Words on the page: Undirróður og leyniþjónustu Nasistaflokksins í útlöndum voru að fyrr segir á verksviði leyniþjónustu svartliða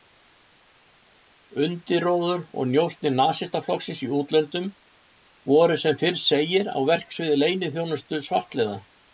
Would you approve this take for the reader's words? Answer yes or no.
no